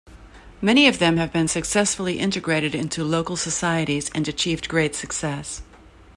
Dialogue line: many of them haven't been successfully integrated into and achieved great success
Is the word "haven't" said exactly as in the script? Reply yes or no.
no